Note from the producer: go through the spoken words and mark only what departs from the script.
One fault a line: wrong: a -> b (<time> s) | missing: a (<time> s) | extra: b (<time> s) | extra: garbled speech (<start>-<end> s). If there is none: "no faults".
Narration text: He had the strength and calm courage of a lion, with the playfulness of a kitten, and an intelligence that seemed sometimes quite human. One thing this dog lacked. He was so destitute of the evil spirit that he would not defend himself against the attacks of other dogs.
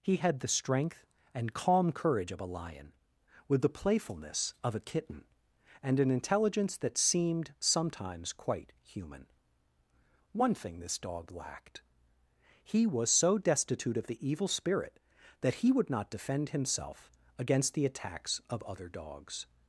no faults